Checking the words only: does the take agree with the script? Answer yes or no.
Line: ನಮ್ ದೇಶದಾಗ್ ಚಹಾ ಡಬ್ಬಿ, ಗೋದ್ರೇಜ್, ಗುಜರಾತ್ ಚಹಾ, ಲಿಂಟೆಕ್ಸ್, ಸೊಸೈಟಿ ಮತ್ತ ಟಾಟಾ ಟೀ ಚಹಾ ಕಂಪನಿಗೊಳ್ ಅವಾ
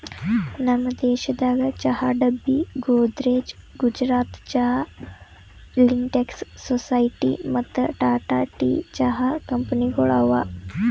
yes